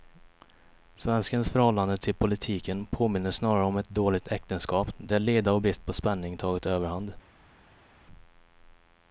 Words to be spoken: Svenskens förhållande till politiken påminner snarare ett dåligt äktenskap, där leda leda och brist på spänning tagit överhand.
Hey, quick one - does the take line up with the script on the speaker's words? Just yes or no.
no